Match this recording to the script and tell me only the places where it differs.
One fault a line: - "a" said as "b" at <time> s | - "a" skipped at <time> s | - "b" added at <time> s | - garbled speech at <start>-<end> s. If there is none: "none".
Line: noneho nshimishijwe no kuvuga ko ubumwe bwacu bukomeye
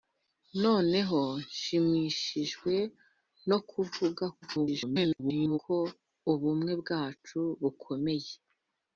- garbled speech at 4.4-5.6 s